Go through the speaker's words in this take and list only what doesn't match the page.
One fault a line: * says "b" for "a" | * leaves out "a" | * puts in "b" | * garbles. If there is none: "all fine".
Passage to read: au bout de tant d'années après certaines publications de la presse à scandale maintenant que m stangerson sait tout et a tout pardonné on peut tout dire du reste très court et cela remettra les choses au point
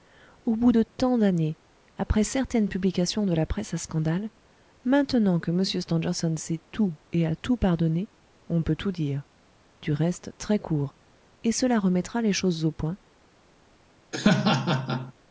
all fine